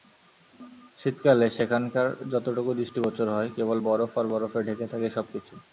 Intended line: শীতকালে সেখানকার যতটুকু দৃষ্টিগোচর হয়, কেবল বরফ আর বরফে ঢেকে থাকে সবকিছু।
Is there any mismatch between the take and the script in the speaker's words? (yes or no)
no